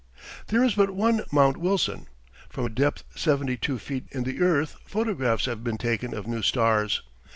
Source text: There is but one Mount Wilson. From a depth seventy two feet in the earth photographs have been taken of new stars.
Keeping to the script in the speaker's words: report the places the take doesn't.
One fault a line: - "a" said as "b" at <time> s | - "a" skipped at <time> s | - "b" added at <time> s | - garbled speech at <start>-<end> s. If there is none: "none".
none